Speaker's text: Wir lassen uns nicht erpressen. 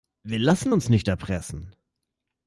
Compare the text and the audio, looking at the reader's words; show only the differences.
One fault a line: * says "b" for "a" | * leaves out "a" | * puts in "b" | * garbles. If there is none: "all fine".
all fine